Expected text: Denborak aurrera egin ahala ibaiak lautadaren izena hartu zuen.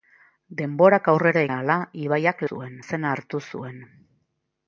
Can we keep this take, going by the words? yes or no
no